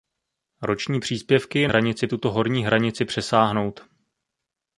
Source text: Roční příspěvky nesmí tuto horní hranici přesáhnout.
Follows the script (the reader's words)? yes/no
no